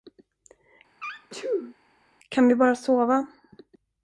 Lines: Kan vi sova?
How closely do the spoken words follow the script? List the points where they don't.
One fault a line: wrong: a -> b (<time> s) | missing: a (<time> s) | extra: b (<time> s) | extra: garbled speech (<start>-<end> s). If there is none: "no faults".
extra: bara (2.5 s)